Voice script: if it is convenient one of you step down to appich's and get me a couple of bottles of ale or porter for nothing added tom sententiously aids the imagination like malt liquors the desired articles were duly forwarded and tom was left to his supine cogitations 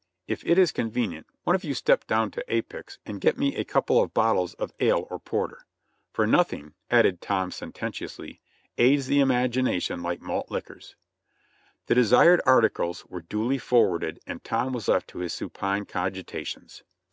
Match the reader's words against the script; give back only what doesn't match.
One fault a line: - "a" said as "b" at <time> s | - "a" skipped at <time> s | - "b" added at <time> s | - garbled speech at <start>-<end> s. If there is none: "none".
none